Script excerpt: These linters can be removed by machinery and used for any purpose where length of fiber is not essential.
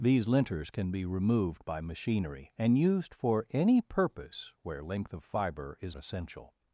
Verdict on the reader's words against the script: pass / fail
fail